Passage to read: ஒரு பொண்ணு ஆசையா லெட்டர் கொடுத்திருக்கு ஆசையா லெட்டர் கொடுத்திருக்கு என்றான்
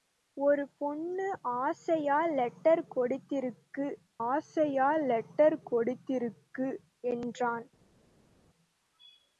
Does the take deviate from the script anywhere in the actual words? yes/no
no